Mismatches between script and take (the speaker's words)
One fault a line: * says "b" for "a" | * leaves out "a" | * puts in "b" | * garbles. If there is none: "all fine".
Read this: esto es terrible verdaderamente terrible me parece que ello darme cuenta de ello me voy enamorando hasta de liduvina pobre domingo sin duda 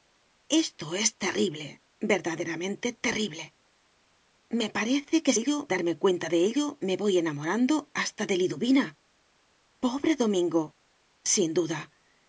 all fine